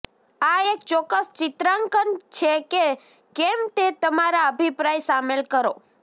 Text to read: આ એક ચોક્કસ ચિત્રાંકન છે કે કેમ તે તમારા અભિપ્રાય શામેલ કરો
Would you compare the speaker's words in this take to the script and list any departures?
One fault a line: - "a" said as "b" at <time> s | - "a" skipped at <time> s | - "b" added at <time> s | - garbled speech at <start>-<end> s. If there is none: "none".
none